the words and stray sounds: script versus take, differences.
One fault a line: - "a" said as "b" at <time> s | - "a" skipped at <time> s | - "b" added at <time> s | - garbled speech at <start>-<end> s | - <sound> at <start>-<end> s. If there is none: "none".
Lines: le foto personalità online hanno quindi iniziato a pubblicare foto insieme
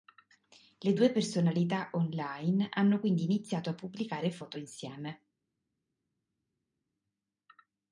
- "foto" said as "due" at 0.9 s